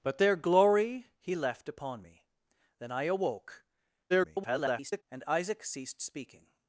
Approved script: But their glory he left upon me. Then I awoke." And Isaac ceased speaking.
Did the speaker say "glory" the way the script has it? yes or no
yes